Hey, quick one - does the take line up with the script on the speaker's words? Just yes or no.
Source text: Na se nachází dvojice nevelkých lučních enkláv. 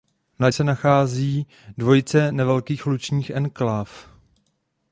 yes